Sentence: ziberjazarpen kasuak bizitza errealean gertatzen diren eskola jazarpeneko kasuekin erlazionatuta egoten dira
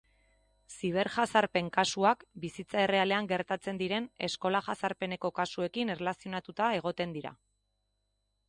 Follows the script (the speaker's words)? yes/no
yes